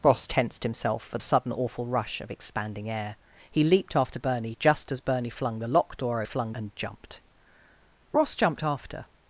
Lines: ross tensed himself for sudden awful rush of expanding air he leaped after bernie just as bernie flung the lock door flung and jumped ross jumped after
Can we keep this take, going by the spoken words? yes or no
yes